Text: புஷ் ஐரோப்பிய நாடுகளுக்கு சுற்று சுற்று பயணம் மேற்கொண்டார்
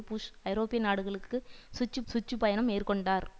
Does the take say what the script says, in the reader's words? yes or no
yes